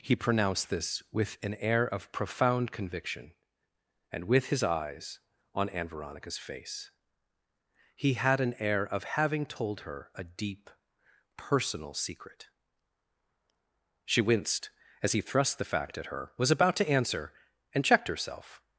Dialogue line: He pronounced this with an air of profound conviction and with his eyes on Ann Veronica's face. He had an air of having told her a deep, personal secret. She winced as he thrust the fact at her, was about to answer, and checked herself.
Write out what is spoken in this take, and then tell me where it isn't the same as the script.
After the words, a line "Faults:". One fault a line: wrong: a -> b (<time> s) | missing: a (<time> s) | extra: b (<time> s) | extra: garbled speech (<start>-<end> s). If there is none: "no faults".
He pronounced this with an air of profound conviction and with his eyes on Ann Veronica's face. He had an air of having told her a deep, personal secret. She winced as he thrust the fact at her, was about to answer, and checked herself.
Faults:
no faults